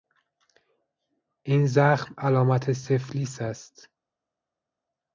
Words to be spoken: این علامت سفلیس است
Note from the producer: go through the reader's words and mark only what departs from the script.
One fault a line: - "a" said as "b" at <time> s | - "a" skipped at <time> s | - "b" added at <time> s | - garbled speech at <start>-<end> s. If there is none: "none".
- "زخم" added at 1.6 s